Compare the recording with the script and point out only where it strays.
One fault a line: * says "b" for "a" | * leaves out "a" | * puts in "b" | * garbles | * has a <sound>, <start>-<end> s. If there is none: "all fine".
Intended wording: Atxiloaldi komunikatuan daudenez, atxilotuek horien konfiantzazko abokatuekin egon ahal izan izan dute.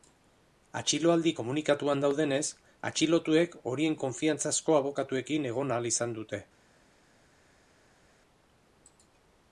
* leaves out "izan"